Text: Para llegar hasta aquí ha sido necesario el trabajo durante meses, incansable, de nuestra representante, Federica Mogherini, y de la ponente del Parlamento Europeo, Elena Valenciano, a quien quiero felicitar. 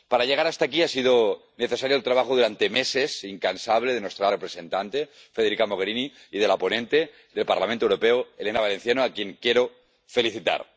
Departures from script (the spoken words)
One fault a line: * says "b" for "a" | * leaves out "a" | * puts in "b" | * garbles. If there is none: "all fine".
all fine